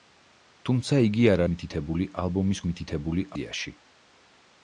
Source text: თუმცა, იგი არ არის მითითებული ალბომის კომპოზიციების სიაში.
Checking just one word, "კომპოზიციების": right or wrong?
wrong